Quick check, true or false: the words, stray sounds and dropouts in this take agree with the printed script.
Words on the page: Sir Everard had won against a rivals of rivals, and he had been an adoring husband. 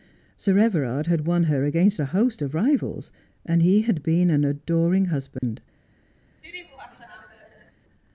false